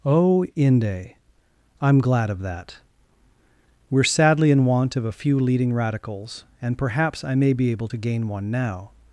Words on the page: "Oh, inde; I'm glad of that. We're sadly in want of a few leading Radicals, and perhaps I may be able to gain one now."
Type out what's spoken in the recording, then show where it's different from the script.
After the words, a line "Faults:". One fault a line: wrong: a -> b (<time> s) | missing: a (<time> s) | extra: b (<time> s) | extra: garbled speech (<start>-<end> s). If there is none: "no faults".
"Oh, inde; I'm glad of that. We're sadly in want of a few leading Radicals, and perhaps I may be able to gain one now."
Faults:
no faults